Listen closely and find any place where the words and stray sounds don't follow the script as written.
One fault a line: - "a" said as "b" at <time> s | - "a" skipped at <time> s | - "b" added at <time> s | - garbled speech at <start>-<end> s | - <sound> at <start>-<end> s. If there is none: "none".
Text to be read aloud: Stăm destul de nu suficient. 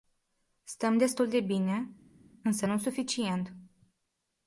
- "bine însă" added at 1.4 s